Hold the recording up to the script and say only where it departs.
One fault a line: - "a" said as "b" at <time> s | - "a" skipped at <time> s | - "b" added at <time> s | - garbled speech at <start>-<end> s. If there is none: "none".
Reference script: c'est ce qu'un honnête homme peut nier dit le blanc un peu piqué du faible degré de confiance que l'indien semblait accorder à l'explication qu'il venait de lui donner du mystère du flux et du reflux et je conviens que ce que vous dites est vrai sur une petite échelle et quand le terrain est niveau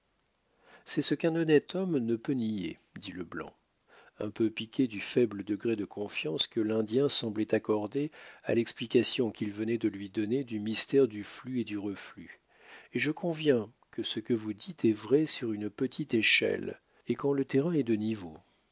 - "ne" added at 2.0 s
- "de" added at 17.8 s